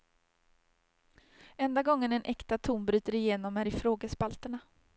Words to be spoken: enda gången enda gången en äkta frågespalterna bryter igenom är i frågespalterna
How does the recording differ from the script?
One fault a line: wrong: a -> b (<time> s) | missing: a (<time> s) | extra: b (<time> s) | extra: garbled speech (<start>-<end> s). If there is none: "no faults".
missing: enda gången (2.1 s)
wrong: frågespalterna -> ton (2.6 s)